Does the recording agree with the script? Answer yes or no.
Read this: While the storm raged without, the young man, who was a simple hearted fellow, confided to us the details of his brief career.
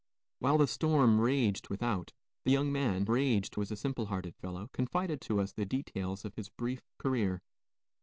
no